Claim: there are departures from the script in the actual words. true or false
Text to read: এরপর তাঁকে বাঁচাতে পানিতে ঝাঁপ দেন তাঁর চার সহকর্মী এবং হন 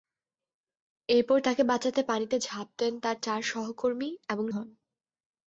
false